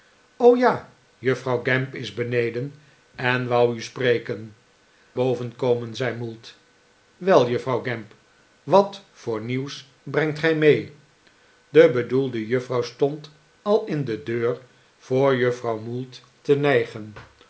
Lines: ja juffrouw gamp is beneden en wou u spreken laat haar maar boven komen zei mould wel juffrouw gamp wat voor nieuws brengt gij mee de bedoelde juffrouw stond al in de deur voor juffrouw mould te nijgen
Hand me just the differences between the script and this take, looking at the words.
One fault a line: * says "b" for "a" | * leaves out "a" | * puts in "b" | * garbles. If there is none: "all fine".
* leaves out "laat haar maar"